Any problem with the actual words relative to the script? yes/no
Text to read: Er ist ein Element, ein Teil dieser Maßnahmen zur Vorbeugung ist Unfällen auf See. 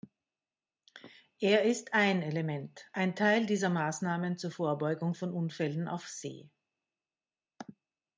yes